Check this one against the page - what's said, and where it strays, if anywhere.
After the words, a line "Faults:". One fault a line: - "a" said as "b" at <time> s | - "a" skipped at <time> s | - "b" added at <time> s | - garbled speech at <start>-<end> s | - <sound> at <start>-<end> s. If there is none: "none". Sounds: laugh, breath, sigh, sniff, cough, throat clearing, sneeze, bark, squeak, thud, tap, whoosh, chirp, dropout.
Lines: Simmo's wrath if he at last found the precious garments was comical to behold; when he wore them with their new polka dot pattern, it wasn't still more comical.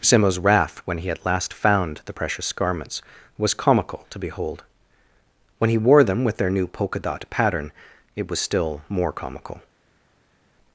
Simmo's wrath when he at last found the precious garments was comical to behold; when he wore them with their new polka dot pattern, it was still more comical.
Faults:
- "if" said as "when" at 0.8 s
- "wasn't" said as "was" at 8.3 s